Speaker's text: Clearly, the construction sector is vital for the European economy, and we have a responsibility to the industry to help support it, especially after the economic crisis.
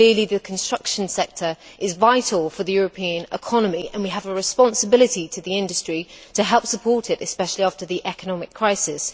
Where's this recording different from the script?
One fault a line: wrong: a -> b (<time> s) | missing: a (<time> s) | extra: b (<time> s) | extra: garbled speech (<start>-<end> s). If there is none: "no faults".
no faults